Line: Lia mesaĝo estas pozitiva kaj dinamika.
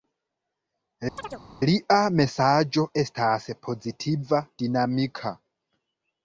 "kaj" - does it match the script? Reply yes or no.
no